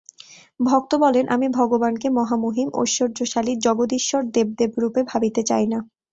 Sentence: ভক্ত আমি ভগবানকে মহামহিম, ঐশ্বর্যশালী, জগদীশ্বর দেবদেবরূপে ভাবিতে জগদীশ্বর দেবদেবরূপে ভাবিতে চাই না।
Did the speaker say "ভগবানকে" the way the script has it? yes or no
yes